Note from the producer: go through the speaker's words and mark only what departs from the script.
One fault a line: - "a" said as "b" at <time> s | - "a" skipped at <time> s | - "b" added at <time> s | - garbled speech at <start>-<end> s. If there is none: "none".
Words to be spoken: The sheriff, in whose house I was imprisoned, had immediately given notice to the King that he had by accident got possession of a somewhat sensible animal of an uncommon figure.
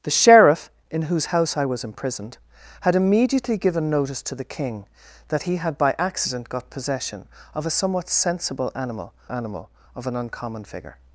- "animal" added at 9.3 s